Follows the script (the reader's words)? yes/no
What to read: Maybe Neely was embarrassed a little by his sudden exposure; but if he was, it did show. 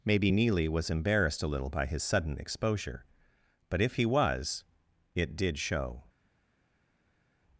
yes